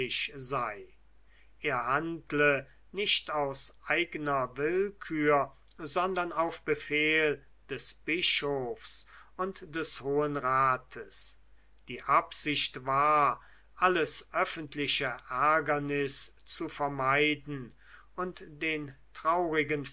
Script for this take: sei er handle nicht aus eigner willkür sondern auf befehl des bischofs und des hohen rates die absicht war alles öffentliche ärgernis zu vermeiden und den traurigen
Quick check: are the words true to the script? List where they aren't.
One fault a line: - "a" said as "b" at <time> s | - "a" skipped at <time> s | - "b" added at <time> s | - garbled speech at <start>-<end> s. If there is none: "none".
none